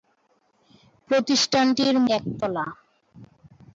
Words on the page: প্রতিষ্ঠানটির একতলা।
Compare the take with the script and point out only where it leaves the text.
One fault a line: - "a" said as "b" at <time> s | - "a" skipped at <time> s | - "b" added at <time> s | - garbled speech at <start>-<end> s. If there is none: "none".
none